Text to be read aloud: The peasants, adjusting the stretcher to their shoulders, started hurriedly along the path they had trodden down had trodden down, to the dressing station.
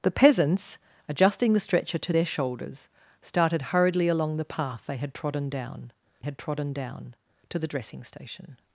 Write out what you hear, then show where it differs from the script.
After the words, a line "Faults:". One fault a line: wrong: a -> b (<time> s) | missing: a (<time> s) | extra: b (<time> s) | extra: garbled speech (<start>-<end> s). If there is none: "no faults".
The peasants, adjusting the stretcher to their shoulders, started hurriedly along the path they had trodden down had trodden down, to the dressing station.
Faults:
no faults